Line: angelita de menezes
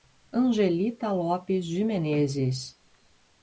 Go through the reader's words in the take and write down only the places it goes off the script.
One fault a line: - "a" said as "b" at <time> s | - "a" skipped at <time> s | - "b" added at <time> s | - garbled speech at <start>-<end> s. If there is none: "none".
- "lopes" added at 1.1 s